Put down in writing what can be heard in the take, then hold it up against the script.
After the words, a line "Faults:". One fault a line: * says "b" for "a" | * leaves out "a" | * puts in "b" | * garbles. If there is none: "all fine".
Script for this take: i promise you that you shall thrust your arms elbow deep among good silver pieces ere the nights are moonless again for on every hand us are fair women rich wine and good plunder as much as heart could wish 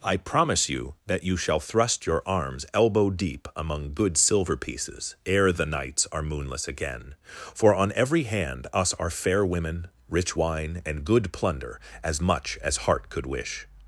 i promise you that you shall thrust your arms elbow deep among good silver pieces ere the nights are moonless again for on every hand us are fair women rich wine and good plunder as much as heart could wish
Faults:
all fine